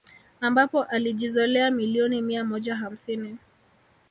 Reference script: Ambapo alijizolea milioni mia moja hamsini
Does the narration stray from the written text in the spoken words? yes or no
no